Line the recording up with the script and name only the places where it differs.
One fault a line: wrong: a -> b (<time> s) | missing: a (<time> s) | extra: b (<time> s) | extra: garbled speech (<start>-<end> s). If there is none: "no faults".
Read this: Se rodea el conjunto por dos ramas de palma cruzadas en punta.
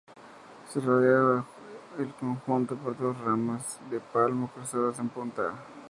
no faults